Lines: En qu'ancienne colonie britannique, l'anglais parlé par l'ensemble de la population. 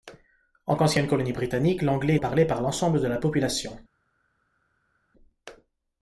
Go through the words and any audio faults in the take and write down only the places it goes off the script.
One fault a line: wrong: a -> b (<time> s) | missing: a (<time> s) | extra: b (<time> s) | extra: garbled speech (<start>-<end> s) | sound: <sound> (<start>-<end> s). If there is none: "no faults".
no faults